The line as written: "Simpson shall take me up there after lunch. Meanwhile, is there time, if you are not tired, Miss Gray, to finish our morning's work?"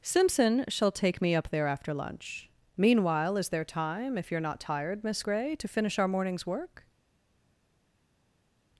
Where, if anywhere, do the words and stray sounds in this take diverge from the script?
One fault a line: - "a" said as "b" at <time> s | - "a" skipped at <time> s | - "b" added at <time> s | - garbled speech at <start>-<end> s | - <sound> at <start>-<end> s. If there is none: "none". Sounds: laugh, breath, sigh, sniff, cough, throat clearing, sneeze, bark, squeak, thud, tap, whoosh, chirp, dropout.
none